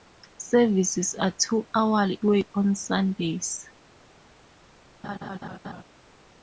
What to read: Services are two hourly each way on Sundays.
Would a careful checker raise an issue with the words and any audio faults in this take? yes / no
yes